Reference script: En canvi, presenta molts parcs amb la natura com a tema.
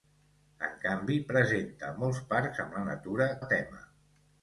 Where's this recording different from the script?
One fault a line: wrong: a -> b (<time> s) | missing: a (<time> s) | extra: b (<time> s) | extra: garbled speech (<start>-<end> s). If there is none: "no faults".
missing: com (3.3 s)